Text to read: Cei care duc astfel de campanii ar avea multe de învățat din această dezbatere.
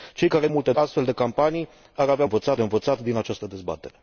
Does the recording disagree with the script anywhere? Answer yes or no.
yes